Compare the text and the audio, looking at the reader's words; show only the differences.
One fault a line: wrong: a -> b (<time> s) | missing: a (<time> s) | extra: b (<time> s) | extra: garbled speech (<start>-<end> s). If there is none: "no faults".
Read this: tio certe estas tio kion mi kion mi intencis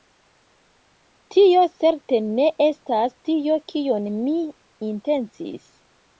extra: ne (2.3 s)
missing: kion mi (4.4 s)